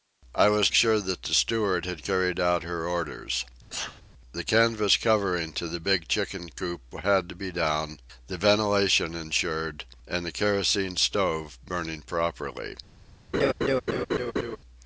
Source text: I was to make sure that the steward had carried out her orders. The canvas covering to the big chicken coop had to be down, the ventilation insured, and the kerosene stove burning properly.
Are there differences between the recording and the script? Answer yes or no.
yes